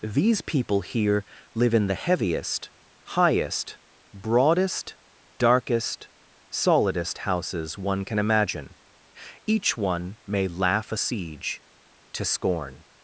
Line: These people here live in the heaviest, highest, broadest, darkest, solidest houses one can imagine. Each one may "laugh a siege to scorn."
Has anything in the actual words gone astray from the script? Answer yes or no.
no